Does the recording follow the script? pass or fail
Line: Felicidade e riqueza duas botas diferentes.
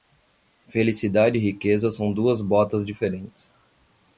fail